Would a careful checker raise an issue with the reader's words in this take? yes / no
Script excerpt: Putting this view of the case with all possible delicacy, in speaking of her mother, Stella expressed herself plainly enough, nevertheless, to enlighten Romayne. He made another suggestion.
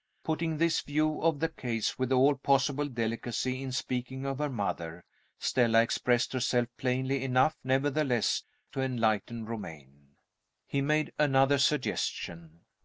no